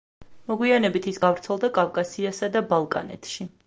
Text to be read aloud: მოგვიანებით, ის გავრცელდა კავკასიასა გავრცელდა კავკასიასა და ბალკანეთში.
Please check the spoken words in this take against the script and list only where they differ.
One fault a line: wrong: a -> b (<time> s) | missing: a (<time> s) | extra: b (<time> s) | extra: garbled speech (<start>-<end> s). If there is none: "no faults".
missing: გავრცელდა კავკასიასა (2.5 s)